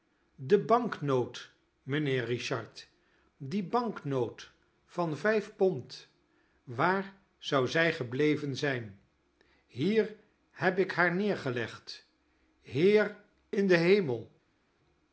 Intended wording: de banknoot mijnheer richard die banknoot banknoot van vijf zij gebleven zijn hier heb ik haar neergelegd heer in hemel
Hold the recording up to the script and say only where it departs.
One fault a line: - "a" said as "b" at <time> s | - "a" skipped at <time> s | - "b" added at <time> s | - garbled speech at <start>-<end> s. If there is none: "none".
- "banknoot" skipped at 4.5 s
- "pond waar zou" added at 5.5 s
- "den" added at 13.7 s